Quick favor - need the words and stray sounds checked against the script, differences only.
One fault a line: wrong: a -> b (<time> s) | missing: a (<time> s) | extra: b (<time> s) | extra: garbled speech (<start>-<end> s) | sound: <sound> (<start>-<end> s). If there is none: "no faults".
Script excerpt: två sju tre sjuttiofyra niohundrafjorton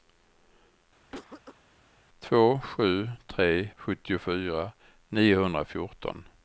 sound: cough (1.1-1.6 s)